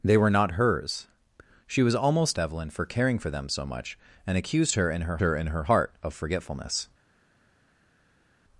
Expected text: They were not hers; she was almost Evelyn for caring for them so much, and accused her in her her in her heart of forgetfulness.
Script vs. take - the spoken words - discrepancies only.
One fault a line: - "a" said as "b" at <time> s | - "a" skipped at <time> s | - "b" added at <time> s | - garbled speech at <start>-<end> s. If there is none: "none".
none